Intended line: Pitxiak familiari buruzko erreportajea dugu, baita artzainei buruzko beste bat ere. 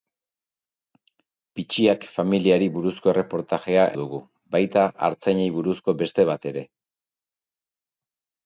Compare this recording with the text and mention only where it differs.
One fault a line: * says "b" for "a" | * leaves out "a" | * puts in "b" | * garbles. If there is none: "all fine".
all fine